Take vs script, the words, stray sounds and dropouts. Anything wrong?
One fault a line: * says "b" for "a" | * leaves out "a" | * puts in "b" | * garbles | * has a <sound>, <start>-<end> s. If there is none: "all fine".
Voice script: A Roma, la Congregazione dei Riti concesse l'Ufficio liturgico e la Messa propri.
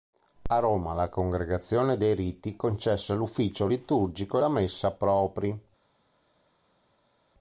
all fine